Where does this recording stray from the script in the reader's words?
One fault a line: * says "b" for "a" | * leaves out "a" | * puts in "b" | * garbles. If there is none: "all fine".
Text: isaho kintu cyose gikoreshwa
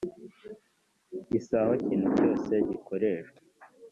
all fine